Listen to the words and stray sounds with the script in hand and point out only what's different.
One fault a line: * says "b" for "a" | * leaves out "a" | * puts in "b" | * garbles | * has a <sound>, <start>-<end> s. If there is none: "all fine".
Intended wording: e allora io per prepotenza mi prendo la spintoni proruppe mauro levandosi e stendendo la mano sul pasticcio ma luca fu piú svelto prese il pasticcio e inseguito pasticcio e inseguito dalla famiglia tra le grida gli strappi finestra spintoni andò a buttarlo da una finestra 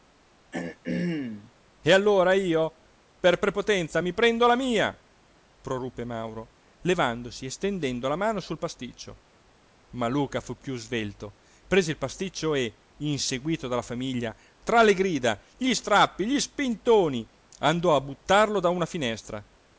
* has a throat clearing, 0.5-1.5 s
* says "mia" for "spintoni"
* leaves out "pasticcio e inseguito"
* says "gli" for "finestra"